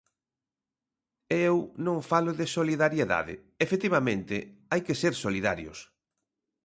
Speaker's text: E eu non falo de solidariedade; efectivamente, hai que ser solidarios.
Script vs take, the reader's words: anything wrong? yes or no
no